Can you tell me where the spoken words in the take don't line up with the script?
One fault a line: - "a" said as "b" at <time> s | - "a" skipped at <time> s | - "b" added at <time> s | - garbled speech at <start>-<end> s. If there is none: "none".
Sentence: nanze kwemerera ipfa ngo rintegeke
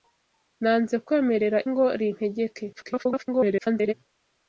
- "ipfa" skipped at 1.6 s
- garbled speech at 2.7-3.9 s